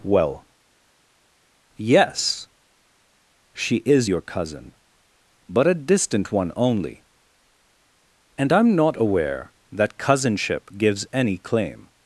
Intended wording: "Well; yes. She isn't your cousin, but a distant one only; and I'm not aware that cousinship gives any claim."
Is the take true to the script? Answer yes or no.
no